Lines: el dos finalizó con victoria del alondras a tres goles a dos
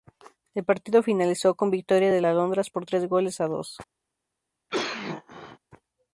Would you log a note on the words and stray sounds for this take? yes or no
yes